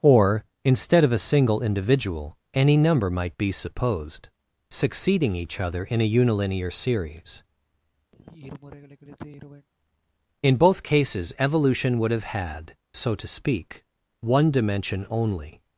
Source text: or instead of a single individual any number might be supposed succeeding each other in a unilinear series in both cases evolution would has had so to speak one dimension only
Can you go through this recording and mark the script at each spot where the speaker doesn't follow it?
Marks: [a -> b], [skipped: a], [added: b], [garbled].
or instead of a single individual any number might be supposed succeeding each other in a unilinear series in both cases evolution would [has -> have] had so to speak one dimension only